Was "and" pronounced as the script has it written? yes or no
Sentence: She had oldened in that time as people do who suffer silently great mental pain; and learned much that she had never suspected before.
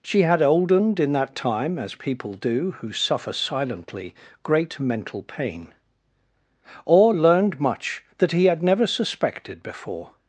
no